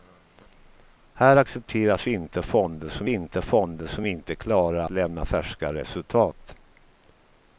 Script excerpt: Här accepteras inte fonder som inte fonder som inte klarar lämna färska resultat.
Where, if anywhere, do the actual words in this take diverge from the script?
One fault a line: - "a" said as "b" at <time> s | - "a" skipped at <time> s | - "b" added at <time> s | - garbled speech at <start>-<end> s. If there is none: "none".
none